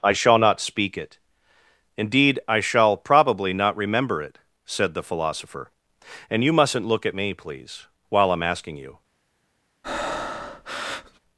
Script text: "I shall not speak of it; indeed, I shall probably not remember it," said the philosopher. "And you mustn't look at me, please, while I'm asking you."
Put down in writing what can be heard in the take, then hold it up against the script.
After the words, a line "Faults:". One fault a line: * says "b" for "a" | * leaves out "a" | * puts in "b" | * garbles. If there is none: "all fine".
"I shall not speak it; indeed, I shall probably not remember it," said the philosopher. "And you mustn't look at me, please, while I'm asking you."
Faults:
* leaves out "of"